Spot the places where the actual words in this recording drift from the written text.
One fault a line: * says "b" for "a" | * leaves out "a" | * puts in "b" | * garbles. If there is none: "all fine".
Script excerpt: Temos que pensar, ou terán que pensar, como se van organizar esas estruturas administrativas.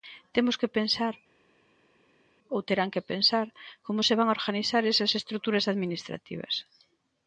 all fine